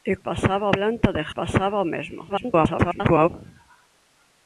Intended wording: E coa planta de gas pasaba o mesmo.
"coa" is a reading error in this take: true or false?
true